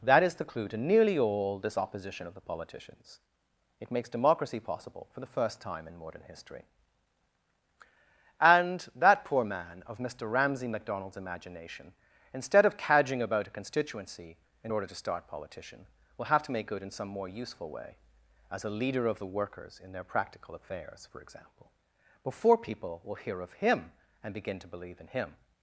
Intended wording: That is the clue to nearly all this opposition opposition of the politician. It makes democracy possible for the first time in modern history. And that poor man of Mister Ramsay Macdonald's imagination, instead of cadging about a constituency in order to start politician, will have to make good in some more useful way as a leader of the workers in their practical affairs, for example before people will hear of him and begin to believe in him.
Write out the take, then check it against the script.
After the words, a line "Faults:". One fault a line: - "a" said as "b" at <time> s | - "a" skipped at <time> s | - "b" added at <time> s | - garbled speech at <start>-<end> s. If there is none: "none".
That is the clue to nearly all this opposition of the politicians. It makes democracy possible for the first time in modern history. And that poor man of Mister Ramsay Macdonald's imagination, instead of cadging about a constituency in order to start politician, will have to make good in some more useful way as a leader of the workers in their practical affairs, for example before people will hear of him and begin to believe in him.
Faults:
- "opposition" skipped at 2.2 s
- "politician" said as "politicians" at 2.4 s